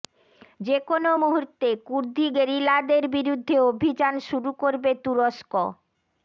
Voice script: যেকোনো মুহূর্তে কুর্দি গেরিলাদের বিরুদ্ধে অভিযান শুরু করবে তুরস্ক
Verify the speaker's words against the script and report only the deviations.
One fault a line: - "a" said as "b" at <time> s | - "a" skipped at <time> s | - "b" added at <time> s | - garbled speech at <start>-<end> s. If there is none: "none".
none